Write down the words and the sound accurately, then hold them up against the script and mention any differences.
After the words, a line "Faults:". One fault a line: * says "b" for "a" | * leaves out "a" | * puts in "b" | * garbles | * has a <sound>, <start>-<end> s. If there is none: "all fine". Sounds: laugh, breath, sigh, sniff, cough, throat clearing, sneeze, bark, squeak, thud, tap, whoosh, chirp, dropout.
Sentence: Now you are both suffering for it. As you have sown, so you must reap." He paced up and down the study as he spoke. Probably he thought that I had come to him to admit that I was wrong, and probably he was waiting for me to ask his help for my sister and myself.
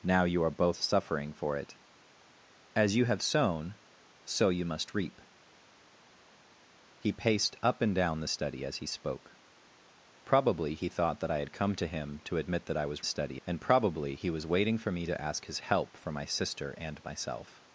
Now you are both suffering for it. As you have sown, so you must reap." He paced up and down the study as he spoke. Probably he thought that I had come to him to admit that I was study, and probably he was waiting for me to ask his help for my sister and myself.
Faults:
* says "study" for "wrong"